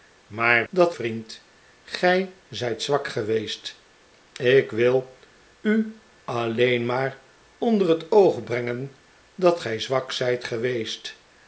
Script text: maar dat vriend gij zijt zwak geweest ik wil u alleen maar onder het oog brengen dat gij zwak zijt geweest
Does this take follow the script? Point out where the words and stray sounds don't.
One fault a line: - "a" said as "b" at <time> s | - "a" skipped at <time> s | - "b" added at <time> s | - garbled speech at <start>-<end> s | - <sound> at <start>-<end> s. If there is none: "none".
none